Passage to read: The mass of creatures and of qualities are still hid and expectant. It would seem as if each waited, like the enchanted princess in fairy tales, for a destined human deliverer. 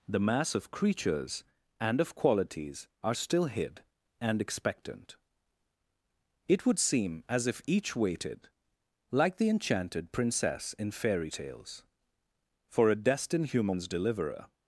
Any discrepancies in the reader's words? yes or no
yes